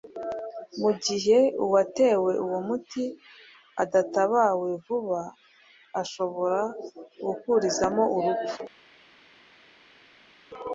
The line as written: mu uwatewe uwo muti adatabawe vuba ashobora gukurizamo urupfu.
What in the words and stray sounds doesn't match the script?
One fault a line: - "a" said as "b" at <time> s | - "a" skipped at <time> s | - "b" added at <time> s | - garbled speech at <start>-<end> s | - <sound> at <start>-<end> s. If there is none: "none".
- "gihe" added at 1.1 s